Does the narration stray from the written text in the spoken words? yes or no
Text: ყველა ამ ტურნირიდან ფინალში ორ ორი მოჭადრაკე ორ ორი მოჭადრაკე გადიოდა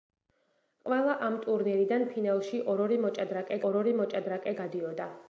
no